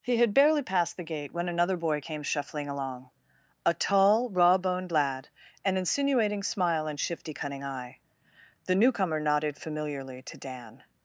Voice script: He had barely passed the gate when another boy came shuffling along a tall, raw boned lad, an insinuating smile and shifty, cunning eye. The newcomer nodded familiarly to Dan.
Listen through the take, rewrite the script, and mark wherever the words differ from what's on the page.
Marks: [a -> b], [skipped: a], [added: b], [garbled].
He had barely passed the gate when another boy came shuffling along a tall, raw boned lad, an insinuating smile and shifty, cunning eye. The newcomer nodded familiarly to Dan.